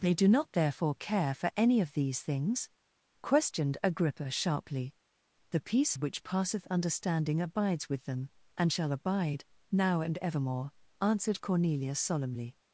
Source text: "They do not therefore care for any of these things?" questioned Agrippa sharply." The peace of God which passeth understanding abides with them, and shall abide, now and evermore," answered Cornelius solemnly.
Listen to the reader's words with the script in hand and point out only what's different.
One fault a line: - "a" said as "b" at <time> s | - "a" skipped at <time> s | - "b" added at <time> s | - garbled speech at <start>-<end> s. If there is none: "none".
- "of God" skipped at 6.0 s